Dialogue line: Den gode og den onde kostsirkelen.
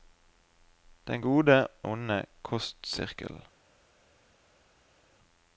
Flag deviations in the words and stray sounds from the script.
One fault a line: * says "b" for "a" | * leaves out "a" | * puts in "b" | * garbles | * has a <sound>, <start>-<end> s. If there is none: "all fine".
* leaves out "og den"